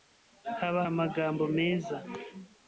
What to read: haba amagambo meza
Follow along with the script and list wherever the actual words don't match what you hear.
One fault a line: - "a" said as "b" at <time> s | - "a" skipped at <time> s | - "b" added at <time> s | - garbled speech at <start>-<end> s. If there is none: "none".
none